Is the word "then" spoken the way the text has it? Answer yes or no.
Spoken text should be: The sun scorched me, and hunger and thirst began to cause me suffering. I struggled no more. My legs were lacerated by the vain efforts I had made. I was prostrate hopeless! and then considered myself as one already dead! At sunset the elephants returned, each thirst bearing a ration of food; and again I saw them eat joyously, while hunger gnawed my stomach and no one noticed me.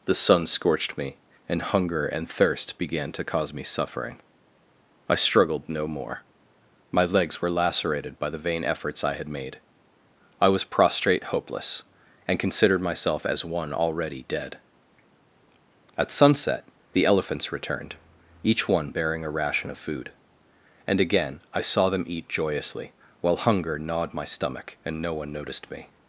no